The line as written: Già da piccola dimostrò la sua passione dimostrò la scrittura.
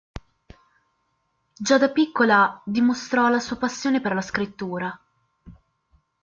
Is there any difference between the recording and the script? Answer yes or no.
yes